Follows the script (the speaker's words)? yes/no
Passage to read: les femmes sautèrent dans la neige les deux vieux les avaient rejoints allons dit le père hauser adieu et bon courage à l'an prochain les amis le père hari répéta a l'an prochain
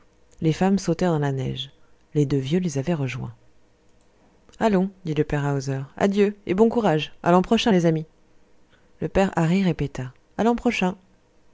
yes